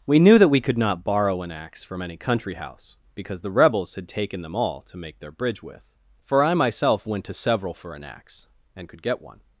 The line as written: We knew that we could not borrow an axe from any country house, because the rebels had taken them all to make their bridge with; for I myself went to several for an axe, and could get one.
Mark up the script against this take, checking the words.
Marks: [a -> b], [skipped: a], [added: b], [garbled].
We knew that we could not borrow an axe from any country house, because the rebels had taken them all to make their bridge with; for I myself went to several for an axe, and could get one.